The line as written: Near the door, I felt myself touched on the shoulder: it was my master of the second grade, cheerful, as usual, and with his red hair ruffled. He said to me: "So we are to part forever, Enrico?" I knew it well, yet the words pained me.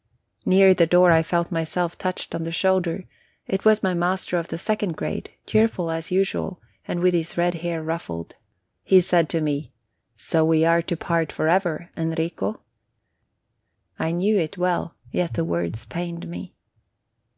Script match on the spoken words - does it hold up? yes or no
yes